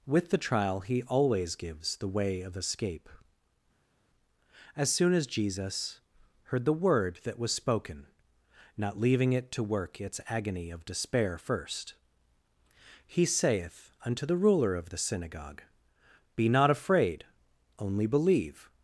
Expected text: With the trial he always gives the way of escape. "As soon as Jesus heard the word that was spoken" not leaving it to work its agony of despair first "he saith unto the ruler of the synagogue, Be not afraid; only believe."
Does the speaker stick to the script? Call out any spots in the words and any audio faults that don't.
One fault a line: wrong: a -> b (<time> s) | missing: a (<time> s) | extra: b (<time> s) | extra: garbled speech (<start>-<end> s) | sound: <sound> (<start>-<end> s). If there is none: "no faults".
no faults